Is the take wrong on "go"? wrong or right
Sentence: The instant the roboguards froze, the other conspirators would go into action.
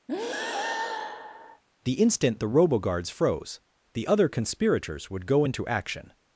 right